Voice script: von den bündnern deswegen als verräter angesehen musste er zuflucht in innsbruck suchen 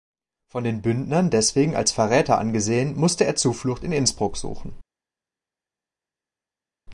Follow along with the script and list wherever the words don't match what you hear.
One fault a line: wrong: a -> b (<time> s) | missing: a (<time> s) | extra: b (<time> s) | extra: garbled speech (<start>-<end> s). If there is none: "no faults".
no faults